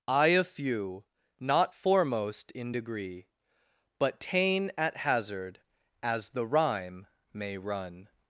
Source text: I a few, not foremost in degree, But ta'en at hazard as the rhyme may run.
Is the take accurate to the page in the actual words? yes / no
yes